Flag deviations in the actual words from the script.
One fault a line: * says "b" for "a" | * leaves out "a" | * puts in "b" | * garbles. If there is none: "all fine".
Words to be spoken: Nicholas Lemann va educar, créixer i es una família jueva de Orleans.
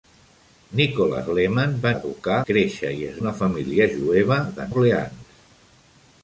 all fine